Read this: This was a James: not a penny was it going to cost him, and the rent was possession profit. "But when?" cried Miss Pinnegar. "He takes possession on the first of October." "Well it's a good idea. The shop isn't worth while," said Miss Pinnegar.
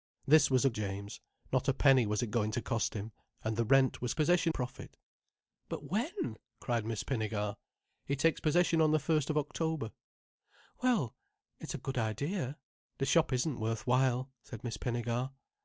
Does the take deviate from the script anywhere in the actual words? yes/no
no